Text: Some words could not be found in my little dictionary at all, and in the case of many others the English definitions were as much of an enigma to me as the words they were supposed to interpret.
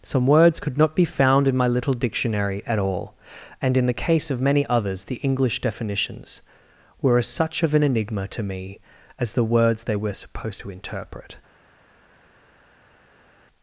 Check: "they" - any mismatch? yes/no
no